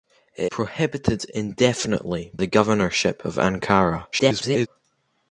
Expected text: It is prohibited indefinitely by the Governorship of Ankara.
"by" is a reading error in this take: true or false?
true